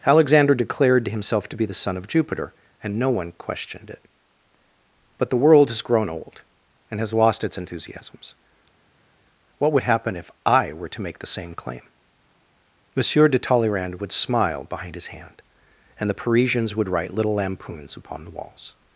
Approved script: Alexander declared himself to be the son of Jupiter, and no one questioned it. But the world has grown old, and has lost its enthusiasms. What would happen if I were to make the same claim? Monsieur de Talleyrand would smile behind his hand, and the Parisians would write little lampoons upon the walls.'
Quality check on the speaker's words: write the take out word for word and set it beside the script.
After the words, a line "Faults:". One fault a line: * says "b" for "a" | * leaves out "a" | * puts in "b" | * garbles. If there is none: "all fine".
Alexander declared himself to be the son of Jupiter, and no one questioned it. But the world has grown old, and has lost its enthusiasms. What would happen if I were to make the same claim? Monsieur de Talleyrand would smile behind his hand, and the Parisians would write little lampoons upon the walls.'
Faults:
all fine